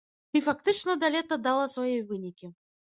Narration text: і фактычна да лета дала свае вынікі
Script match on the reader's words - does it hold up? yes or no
yes